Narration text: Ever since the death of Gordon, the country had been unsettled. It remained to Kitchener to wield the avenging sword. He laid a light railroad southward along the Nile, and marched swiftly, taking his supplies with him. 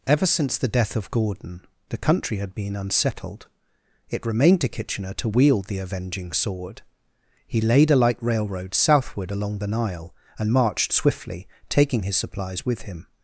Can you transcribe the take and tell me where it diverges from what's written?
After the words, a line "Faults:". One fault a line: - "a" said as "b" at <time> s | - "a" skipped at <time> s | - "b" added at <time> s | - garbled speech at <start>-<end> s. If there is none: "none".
Ever since the death of Gordon, the country had been unsettled. It remained to Kitchener to wield the avenging sword. He laid a light railroad southward along the Nile, and marched swiftly, taking his supplies with him.
Faults:
none